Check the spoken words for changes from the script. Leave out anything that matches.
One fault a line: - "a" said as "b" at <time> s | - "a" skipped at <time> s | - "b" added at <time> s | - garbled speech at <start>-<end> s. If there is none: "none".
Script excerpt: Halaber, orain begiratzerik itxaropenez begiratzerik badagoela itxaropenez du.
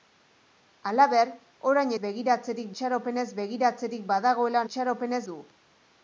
none